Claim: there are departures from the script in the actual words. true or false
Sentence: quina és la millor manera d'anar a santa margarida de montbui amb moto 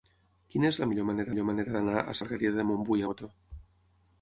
true